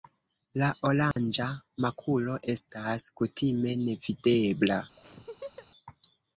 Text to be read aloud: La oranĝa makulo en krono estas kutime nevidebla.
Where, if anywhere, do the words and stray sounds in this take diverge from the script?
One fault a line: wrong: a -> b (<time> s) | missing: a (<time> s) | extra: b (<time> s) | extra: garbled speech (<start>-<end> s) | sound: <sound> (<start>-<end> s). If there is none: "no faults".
sound: dropout (1.1-1.2 s)
missing: en krono (2.4 s)
sound: laugh (5.0-5.7 s)